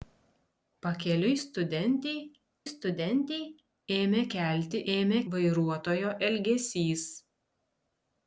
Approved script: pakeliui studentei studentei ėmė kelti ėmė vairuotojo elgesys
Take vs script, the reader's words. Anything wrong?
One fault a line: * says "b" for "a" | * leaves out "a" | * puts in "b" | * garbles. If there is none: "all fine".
all fine